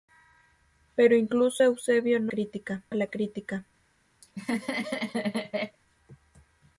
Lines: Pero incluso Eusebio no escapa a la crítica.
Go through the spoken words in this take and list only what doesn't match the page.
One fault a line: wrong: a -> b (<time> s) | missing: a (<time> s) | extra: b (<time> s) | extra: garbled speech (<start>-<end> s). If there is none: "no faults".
wrong: escapa -> crítica (2.3 s)